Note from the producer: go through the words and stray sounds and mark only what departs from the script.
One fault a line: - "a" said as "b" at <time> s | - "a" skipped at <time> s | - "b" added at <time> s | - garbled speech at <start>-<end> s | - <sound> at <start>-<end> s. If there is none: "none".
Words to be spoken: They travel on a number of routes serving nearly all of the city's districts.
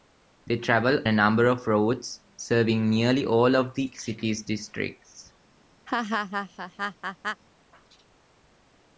- "on" skipped at 1.1 s
- laugh at 5.9-7.4 s